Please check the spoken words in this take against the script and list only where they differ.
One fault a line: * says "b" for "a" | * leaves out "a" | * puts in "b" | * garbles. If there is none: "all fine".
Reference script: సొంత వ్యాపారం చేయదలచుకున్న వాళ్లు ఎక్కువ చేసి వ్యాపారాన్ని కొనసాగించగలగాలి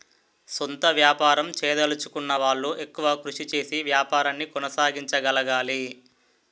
* puts in "కృషి"